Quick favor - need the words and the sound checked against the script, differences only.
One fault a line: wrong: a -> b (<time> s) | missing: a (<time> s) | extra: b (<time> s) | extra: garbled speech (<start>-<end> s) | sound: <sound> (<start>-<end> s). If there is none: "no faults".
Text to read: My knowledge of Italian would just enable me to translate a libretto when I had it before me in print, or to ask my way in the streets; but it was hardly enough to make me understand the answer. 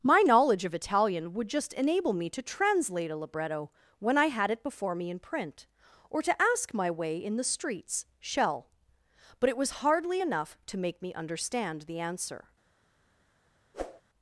extra: shell (8.2 s)
sound: whoosh (13.7-14.0 s)